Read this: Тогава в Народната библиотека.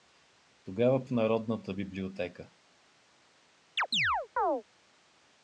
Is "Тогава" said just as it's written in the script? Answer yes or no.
yes